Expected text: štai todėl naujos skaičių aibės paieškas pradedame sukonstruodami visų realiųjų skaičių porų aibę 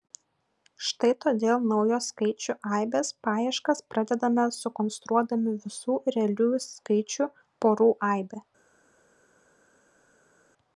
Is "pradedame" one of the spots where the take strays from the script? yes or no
no